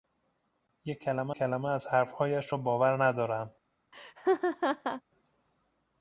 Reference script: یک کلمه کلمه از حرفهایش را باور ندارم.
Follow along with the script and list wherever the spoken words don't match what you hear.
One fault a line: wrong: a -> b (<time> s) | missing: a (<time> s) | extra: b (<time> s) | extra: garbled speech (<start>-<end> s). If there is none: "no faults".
no faults